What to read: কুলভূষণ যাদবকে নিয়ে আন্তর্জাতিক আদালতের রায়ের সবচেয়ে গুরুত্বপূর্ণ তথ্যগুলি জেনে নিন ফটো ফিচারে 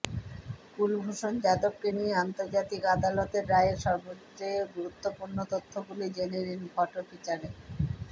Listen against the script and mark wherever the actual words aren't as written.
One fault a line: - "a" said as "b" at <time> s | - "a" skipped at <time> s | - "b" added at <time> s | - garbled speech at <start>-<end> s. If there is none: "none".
none